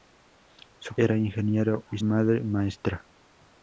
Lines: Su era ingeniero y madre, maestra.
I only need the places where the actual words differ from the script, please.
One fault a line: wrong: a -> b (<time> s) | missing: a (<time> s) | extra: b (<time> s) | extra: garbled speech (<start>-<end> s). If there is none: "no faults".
no faults